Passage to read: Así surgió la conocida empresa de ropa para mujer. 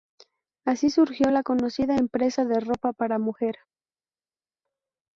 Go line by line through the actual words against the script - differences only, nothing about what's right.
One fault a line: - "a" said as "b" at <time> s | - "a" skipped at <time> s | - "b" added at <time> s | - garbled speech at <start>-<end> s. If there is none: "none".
none